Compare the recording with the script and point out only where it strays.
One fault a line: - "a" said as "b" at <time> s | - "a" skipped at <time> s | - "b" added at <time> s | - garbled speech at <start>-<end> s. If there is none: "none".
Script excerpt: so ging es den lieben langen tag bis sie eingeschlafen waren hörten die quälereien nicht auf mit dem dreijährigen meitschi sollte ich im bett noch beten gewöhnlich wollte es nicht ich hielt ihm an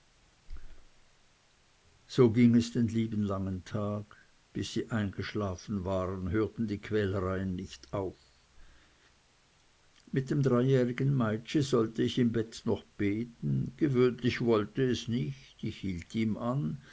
none